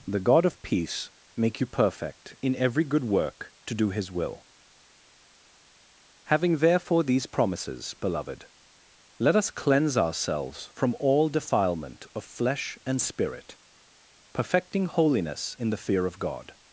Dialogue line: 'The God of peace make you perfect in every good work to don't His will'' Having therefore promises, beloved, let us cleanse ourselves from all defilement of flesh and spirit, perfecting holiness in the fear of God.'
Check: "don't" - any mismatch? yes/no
yes